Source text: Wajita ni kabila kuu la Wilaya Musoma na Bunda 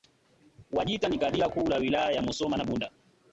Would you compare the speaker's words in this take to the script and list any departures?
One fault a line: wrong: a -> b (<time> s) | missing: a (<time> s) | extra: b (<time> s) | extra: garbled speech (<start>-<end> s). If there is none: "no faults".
extra: ya (2.1 s)